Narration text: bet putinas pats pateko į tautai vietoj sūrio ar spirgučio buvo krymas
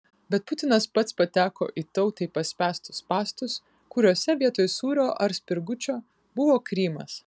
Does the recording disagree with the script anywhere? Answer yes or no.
yes